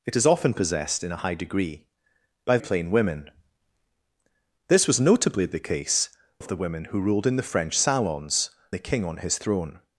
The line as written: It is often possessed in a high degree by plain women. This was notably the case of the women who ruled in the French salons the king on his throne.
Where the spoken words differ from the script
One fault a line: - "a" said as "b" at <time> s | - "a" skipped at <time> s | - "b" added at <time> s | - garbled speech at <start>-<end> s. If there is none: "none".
none